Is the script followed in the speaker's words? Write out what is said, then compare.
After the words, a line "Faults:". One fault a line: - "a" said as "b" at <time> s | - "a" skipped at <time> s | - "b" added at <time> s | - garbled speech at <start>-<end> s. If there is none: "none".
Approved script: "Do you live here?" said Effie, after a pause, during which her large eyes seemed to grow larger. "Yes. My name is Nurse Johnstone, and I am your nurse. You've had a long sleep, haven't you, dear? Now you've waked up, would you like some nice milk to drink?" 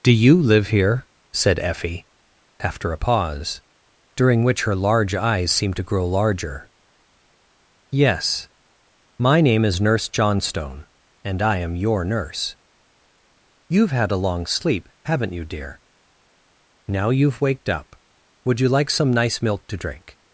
"Do you live here?" said Effie, after a pause, during which her large eyes seemed to grow larger. "Yes. My name is Nurse Johnstone, and I am your nurse. You've had a long sleep, haven't you, dear? Now you've waked up, would you like some nice milk to drink?"
Faults:
none